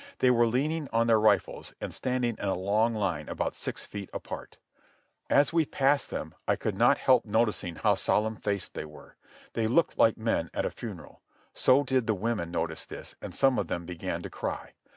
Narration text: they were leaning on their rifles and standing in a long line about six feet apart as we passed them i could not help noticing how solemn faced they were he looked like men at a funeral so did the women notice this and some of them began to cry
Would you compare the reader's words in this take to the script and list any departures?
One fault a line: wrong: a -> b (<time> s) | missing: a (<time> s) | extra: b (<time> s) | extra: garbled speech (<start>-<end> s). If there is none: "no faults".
wrong: he -> they (9.5 s)